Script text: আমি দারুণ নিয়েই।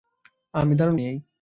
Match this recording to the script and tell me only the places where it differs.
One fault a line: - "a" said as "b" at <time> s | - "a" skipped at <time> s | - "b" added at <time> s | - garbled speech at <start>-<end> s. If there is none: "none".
none